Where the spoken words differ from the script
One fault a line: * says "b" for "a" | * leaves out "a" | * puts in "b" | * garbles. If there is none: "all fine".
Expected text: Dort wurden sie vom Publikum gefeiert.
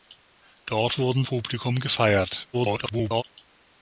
* leaves out "sie vom"
* garbles